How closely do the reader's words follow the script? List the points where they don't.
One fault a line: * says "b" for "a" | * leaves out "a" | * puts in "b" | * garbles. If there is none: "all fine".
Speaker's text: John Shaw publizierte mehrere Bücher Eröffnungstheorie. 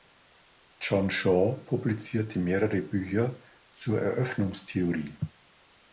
* puts in "zur"